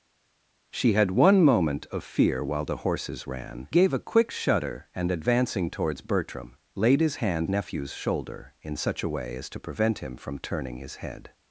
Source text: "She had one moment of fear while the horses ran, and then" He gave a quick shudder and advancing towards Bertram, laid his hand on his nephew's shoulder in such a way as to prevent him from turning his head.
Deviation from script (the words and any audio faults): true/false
true